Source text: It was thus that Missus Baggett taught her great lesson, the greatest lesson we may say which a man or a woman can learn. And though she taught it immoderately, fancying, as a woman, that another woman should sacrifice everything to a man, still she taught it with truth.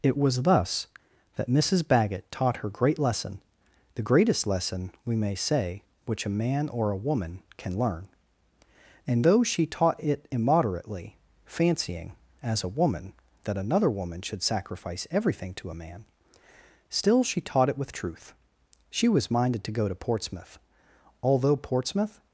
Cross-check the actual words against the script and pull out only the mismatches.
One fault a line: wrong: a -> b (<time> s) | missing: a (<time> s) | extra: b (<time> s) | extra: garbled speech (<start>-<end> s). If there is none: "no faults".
extra: She was minded to go to Portsmouth although Portsmouth (18.9 s)